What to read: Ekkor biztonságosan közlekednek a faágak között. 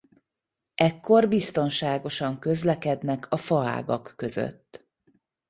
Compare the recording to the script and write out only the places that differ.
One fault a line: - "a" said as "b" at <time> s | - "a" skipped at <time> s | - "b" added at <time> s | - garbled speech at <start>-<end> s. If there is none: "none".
none